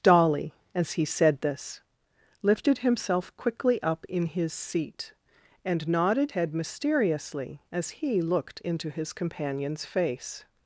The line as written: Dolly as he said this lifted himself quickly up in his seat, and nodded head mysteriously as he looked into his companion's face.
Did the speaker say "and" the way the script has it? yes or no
yes